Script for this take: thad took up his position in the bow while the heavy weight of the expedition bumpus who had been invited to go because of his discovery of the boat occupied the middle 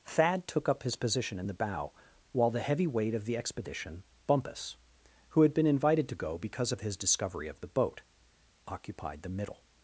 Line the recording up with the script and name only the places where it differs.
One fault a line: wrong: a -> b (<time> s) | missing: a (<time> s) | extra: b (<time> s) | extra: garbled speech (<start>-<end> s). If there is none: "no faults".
no faults